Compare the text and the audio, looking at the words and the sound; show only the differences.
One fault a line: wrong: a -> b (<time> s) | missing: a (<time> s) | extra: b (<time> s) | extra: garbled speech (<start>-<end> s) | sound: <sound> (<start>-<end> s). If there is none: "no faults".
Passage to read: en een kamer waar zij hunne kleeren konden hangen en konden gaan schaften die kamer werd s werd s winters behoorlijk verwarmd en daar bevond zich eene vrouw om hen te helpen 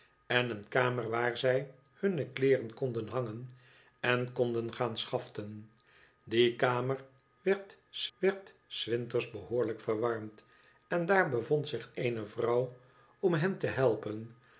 no faults